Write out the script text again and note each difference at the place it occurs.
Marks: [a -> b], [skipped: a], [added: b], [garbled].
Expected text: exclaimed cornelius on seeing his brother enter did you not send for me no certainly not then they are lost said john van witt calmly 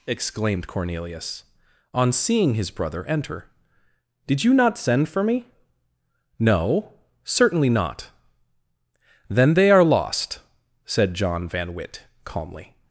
exclaimed cornelius on seeing his brother enter did you not send for me no certainly not then they are lost said john van witt calmly